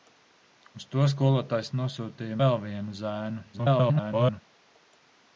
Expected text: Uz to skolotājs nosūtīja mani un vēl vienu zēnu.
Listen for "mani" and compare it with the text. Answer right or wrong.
wrong